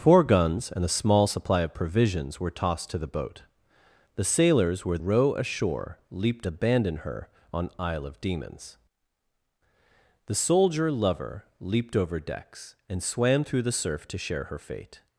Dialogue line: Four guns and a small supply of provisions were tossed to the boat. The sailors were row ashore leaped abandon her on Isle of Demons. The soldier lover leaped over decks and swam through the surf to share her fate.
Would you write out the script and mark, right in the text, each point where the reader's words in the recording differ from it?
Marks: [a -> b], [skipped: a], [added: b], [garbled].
Four guns and a small supply of provisions were tossed to the boat. The sailors were row ashore leaped abandon her on Isle of Demons. The soldier lover leaped over decks and swam through the surf to share her fate.